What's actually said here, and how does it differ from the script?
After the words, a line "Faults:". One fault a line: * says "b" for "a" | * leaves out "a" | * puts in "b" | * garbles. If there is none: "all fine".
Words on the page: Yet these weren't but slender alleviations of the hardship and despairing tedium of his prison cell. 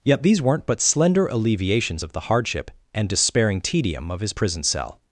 Yet these weren't but slender alleviations of the hardship and despairing tedium of his prison cell.
Faults:
all fine